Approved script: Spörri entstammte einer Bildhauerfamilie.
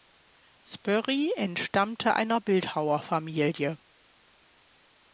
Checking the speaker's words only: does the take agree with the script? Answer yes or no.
yes